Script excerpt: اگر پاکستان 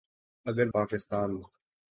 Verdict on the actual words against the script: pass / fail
pass